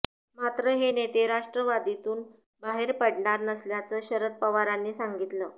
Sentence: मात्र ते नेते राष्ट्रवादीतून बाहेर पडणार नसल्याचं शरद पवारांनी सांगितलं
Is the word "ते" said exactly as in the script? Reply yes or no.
no